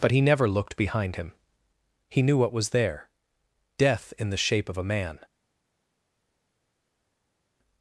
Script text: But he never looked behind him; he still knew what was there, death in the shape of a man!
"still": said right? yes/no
no